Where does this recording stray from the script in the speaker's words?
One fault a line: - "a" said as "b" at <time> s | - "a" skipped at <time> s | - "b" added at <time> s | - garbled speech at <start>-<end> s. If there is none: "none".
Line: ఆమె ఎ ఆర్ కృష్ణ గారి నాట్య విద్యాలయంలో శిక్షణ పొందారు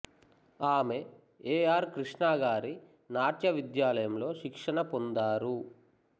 none